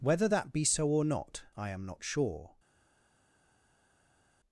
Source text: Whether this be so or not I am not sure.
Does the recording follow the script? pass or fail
fail